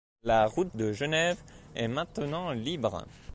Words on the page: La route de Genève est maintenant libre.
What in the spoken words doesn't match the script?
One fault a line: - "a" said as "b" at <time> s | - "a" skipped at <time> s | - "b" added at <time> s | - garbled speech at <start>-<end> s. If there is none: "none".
none